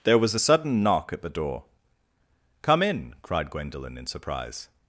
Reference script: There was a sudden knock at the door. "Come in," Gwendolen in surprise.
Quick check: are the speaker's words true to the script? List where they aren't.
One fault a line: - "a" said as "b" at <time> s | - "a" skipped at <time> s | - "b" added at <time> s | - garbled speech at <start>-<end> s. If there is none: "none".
- "cried" added at 3.2 s